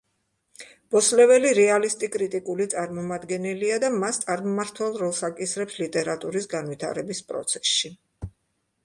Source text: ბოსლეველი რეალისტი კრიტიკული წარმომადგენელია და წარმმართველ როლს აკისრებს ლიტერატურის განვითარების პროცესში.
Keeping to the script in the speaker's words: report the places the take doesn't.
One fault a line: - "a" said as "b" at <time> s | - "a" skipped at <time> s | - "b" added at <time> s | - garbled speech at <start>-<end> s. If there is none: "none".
- "მას" added at 4.0 s